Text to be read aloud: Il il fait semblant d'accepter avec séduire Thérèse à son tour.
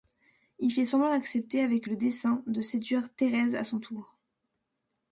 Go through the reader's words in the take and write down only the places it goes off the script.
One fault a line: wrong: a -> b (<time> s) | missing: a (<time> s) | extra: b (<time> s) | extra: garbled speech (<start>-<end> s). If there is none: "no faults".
missing: il (0.7 s)
extra: le dessein de (1.8 s)